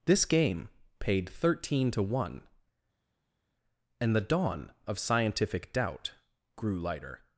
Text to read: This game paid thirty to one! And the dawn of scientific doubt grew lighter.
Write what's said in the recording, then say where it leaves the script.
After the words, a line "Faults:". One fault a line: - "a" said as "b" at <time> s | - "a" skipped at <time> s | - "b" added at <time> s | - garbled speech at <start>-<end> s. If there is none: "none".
This game paid thirteen to one! And the dawn of scientific doubt grew lighter.
Faults:
- "thirty" said as "thirteen" at 1.3 s